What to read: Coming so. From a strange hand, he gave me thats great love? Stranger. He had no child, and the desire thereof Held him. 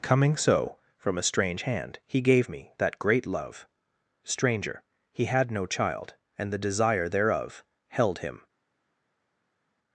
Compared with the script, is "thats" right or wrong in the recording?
wrong